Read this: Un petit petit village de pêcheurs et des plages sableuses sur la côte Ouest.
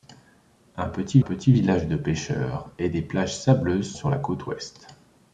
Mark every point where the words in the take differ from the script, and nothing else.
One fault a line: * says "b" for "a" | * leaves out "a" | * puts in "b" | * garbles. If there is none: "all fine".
all fine